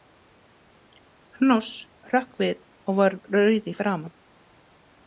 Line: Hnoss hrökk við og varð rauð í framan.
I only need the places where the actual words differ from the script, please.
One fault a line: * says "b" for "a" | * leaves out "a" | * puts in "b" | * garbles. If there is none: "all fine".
all fine